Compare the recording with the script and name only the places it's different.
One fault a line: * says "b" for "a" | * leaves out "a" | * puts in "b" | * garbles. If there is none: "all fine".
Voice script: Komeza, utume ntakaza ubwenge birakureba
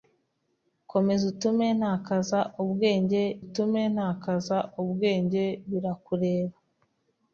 * puts in "utume ntakaza ubwenge"